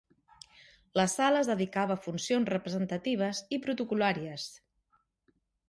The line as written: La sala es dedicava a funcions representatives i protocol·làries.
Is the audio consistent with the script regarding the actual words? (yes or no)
yes